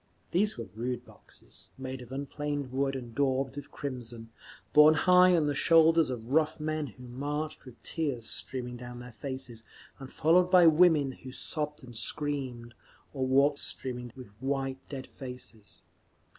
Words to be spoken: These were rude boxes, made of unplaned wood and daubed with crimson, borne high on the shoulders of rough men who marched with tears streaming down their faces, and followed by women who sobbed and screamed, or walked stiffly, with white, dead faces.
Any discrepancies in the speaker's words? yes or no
yes